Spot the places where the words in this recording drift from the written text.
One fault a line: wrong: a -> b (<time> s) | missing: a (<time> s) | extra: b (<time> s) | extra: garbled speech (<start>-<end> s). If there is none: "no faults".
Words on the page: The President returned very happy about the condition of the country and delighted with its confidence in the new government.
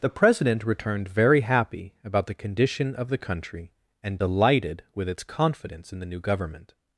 no faults